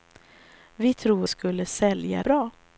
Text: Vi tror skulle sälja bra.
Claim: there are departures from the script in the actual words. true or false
false